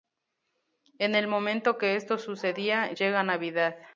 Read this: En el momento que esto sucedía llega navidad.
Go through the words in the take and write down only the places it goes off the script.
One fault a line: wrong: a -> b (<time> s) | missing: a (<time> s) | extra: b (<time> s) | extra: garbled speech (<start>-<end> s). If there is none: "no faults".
no faults